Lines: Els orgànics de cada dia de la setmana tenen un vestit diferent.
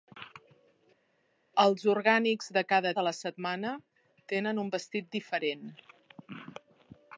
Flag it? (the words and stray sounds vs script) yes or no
yes